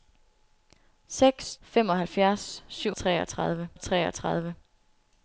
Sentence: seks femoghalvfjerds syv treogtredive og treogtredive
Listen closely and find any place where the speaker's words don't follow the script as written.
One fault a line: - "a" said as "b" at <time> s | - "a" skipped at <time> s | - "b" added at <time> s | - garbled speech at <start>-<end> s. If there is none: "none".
none